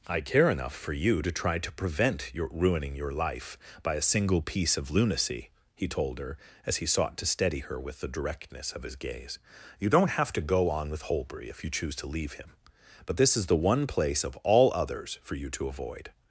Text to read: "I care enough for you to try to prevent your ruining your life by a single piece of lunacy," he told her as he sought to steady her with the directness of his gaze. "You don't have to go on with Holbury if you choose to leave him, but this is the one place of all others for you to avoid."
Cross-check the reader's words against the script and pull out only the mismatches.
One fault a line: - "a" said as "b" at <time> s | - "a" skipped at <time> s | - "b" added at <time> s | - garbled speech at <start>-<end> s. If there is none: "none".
none